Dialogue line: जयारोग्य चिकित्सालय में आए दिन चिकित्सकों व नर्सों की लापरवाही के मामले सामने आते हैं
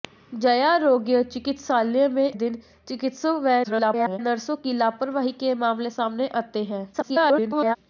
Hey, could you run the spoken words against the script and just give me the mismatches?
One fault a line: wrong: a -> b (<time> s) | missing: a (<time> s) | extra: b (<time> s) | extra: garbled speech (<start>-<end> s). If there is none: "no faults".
missing: आए (2.3 s)
extra: garbled speech (3.6-4.2 s)
extra: garbled speech (6.9-7.8 s)